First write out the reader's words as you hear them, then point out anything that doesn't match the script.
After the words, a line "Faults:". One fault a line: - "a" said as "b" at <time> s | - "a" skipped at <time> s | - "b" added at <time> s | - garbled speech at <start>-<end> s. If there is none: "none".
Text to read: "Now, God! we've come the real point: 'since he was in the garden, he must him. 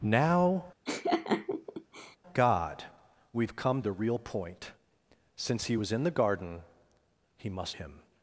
"Now, God! we've come the real point: 'since he was in the garden, he must him.
Faults:
none